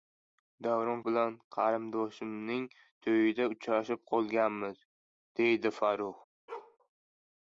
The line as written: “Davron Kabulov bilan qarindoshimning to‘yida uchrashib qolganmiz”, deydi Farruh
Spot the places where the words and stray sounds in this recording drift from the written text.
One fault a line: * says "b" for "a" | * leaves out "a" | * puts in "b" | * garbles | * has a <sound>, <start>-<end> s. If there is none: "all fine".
* leaves out "Kabulov"
* has a bark, 6.5-6.8 s